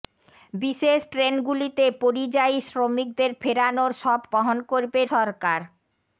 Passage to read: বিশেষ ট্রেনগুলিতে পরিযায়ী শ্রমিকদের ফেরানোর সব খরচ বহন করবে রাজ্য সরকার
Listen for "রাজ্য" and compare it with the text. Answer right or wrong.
wrong